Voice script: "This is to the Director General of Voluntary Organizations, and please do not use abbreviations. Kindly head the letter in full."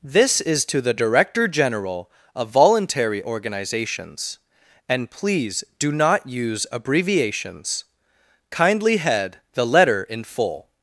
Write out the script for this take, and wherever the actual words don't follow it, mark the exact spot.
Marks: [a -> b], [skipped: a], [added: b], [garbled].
"This is to the Director General of Voluntary Organizations, and please do not use abbreviations. Kindly head the letter in full."